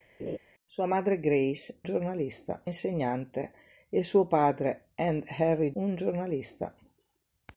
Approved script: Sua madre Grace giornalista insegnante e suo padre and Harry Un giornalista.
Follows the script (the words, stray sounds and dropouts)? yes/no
no